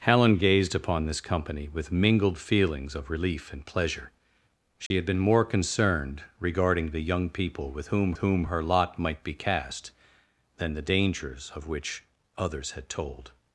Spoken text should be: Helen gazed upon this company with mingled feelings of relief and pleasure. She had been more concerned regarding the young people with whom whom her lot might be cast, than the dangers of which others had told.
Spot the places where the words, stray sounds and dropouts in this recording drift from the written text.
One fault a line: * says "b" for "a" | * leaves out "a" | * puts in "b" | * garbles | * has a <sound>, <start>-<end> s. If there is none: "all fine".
* has a dropout, 4.9-4.9 s